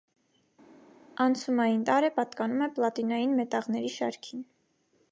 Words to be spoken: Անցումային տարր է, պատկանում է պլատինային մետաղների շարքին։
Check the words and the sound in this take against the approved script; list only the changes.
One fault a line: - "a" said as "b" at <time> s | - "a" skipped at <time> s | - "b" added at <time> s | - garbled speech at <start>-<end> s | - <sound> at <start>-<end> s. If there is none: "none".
none